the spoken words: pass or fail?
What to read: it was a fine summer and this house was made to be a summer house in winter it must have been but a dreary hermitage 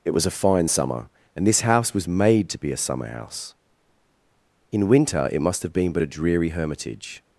pass